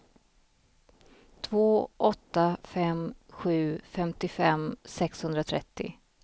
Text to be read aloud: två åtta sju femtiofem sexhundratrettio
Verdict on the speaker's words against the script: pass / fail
fail